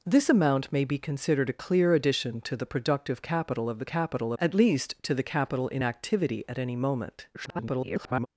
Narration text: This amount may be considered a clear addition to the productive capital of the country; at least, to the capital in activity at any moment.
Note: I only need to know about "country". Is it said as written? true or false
false